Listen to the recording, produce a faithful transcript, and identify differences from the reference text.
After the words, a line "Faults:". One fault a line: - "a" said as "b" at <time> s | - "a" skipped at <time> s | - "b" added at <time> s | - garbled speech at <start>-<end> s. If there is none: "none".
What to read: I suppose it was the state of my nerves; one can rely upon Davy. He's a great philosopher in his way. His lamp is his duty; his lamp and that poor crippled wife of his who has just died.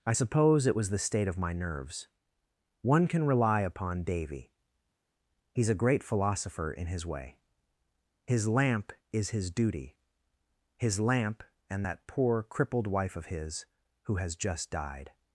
I suppose it was the state of my nerves; one can rely upon Davy. He's a great philosopher in his way. His lamp is his duty; his lamp and that poor crippled wife of his who has just died.
Faults:
none